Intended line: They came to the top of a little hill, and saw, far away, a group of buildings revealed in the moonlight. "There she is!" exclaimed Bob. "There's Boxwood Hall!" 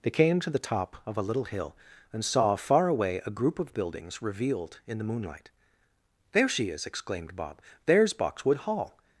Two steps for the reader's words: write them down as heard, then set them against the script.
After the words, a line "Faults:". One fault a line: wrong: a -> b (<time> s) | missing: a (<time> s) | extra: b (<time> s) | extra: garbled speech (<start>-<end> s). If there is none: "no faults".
They came to the top of a little hill, and saw, far away, a group of buildings revealed in the moonlight. "There she is!" exclaimed Bob. "There's Boxwood Hall!"
Faults:
no faults